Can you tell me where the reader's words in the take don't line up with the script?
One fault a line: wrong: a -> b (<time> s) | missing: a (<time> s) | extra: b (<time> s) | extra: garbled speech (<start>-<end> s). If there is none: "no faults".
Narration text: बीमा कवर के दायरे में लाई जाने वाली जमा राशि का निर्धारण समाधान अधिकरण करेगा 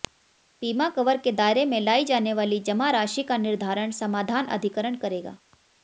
no faults